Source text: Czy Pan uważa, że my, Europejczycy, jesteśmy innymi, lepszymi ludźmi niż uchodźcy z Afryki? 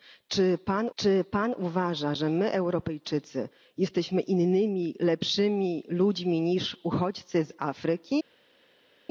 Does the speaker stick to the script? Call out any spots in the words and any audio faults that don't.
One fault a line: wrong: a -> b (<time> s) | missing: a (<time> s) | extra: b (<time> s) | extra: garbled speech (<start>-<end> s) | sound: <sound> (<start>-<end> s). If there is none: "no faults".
extra: czy Pan (0.9 s)